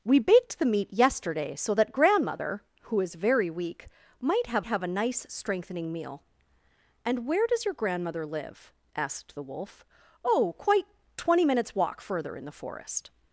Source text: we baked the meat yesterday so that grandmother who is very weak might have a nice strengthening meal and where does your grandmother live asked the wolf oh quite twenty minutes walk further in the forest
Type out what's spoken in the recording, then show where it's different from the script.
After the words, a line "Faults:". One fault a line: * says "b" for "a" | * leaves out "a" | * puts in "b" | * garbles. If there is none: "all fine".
we baked the meat yesterday so that grandmother who is very weak might have have a nice strengthening meal and where does your grandmother live asked the wolf oh quite twenty minutes walk further in the forest
Faults:
* puts in "have"